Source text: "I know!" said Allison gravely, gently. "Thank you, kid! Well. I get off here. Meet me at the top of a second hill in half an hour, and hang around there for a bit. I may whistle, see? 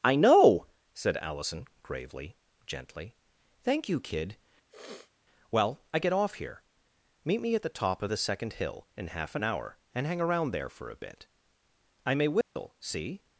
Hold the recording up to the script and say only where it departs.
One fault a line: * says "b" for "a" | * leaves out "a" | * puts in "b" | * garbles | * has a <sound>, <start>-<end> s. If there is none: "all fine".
* has a sniff, 4.7-5.1 s
* says "the" for "a"
* has a dropout, 12.4-12.6 s